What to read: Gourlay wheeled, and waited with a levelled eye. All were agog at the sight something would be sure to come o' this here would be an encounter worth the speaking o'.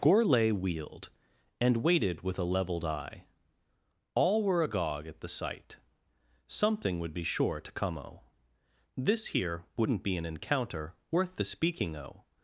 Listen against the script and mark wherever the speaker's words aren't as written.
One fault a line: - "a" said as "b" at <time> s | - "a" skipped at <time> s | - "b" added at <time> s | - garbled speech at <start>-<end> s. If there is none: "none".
- "would" said as "wouldn't" at 9.8 s